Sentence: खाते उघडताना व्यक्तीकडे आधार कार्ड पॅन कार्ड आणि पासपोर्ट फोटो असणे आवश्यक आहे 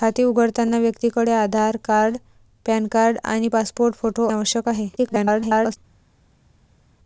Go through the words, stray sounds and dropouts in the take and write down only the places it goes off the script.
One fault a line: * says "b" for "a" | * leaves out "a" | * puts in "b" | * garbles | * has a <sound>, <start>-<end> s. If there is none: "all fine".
* leaves out "असणे"
* garbles